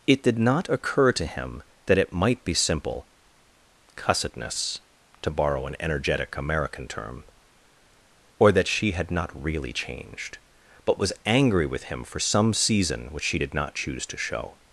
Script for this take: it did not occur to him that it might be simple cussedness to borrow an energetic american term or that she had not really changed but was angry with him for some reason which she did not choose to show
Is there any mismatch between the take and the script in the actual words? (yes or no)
yes